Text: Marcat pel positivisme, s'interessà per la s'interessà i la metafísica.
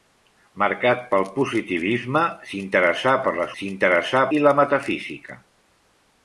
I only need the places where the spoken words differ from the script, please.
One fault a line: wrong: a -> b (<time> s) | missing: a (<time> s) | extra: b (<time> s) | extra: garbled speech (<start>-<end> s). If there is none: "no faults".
no faults